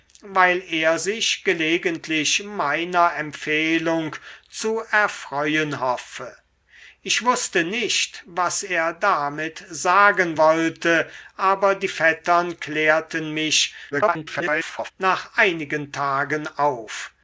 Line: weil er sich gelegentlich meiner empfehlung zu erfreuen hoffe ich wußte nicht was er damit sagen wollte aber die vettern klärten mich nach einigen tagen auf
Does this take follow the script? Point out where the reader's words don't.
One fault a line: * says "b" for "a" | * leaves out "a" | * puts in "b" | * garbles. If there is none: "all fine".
* garbles